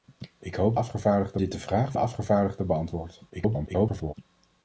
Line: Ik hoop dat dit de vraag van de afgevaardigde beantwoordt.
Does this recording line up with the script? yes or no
no